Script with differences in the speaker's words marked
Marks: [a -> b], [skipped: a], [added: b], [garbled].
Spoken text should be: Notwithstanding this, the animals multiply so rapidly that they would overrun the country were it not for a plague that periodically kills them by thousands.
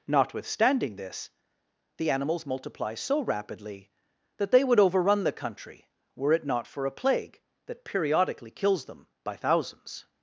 Notwithstanding this, the animals multiply so rapidly that they would overrun the country were it not for a plague that periodically kills them by thousands.